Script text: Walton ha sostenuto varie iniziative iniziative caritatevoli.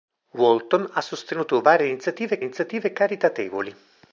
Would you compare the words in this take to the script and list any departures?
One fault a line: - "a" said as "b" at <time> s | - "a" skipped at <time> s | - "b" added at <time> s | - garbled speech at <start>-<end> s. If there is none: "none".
none